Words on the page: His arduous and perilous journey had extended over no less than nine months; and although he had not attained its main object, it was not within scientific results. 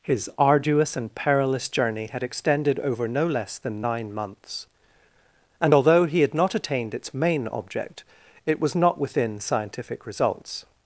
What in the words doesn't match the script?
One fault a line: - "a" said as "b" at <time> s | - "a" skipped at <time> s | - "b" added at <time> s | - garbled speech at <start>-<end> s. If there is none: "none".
none